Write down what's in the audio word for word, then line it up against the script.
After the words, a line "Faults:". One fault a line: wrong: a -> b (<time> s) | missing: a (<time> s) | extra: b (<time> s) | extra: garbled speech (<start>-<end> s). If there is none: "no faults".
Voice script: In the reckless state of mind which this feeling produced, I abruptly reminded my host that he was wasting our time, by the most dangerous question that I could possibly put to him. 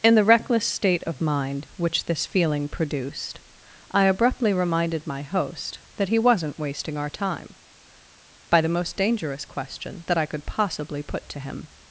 In the reckless state of mind which this feeling produced, I abruptly reminded my host that he wasn't wasting our time, by the most dangerous question that I could possibly put to him.
Faults:
wrong: was -> wasn't (6.2 s)